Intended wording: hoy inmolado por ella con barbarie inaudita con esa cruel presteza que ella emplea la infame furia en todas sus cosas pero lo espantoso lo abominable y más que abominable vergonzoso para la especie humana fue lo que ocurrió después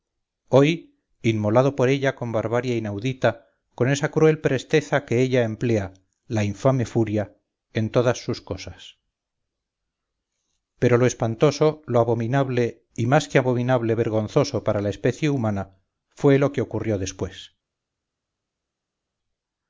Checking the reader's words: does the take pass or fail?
pass